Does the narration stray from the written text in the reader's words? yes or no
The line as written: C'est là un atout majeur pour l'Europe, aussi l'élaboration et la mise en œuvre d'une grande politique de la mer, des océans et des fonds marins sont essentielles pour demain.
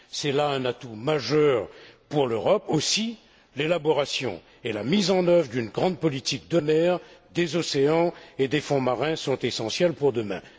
yes